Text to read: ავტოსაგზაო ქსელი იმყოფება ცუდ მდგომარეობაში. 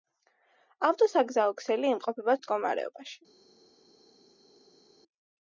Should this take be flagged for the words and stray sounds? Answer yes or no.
yes